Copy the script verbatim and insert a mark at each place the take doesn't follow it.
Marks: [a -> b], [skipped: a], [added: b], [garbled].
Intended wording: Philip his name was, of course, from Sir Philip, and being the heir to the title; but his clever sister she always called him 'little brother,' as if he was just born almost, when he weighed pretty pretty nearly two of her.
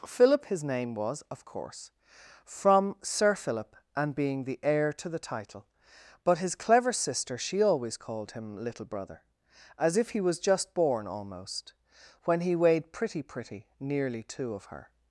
Philip his name was, of course, from Sir Philip, and being the heir to the title; but his clever sister she always called him 'little brother,' as if he was just born almost, when he weighed pretty pretty nearly two of her.